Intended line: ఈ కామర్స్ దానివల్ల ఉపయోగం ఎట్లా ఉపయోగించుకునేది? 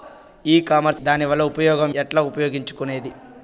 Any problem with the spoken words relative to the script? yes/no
no